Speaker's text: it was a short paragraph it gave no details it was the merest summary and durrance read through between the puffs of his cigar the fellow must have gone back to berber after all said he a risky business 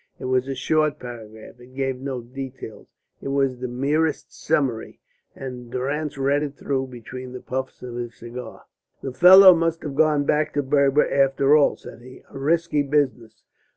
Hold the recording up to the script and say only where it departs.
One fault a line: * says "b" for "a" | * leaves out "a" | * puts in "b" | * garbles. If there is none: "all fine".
* puts in "it"